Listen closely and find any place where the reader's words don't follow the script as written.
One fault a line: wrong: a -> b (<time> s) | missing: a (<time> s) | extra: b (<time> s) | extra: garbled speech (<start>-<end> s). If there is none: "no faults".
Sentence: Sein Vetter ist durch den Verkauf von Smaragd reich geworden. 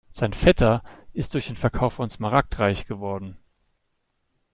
no faults